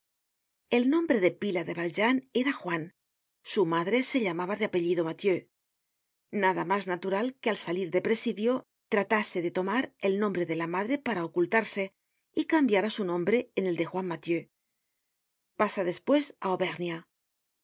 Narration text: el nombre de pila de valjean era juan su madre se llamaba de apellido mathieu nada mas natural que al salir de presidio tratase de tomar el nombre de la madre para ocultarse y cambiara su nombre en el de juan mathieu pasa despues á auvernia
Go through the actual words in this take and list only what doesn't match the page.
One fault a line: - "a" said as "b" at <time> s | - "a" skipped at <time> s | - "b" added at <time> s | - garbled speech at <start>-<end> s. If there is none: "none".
none